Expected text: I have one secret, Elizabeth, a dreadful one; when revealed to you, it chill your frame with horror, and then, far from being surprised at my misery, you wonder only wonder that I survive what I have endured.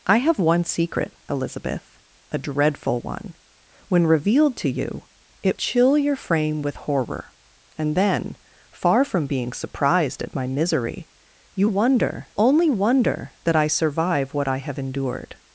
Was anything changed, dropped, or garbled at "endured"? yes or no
no